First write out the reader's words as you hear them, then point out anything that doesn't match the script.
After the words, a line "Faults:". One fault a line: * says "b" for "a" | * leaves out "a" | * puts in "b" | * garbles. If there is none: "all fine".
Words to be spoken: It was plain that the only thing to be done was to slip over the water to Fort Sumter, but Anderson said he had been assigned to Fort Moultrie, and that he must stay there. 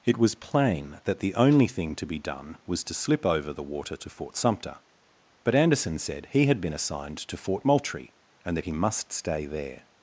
It was plain that the only thing to be done was to slip over the water to Fort Sumter, but Anderson said he had been assigned to Fort Moultrie, and that he must stay there.
Faults:
all fine